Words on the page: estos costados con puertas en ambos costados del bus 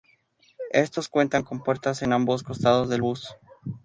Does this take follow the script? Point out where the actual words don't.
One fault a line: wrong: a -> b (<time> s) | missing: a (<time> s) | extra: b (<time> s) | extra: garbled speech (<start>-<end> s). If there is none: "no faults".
wrong: costados -> cuentan (1.1 s)